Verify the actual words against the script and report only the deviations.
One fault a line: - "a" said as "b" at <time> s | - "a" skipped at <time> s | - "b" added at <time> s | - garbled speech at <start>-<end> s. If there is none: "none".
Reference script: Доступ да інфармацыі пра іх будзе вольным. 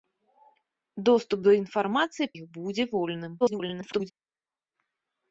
- "пра" skipped at 2.3 s
- garbled speech at 3.4-4.1 s